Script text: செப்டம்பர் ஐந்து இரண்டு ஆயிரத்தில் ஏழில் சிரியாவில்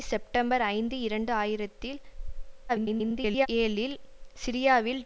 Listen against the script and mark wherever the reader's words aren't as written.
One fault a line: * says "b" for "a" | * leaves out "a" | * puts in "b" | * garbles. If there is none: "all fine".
* garbles